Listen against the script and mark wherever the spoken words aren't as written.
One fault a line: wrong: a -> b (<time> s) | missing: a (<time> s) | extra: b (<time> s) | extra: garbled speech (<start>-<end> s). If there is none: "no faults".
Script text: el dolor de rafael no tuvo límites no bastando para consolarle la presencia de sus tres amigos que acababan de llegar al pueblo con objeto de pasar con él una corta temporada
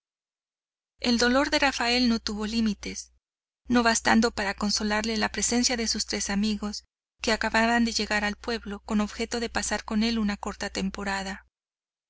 no faults